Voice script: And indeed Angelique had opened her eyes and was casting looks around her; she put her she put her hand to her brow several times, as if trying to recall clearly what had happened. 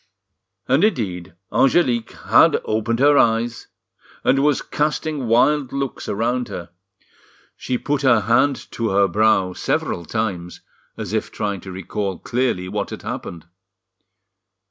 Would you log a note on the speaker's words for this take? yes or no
yes